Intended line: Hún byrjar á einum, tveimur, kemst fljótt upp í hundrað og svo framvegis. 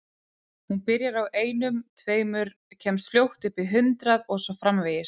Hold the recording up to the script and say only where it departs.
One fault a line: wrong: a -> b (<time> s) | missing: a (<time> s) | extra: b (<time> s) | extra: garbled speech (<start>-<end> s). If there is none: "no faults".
no faults